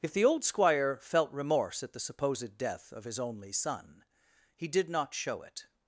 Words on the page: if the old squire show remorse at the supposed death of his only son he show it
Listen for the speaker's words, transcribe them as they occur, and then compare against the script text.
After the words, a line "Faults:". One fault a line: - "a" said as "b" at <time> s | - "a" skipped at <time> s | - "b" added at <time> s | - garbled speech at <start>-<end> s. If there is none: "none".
if the old squire felt remorse at the supposed death of his only son he did not show it
Faults:
- "show" said as "felt" at 1.0 s
- "did not" added at 4.7 s